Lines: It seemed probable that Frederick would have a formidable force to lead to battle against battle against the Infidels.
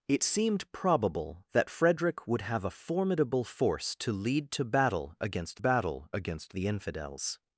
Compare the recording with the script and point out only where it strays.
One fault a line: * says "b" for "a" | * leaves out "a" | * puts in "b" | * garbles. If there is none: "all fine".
all fine